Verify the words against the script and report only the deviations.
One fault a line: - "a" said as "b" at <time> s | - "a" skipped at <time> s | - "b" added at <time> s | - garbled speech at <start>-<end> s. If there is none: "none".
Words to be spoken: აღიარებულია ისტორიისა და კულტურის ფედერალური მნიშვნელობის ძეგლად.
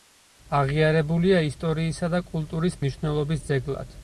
- "ფედერალური" skipped at 2.8 s